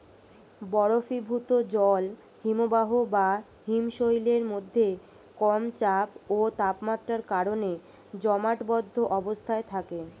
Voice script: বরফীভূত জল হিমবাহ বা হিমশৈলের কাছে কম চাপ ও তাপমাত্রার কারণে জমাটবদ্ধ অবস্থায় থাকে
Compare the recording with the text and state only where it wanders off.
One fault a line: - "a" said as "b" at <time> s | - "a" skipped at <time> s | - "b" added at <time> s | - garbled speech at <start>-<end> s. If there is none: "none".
- "কাছে" said as "মধ্যে" at 4.5 s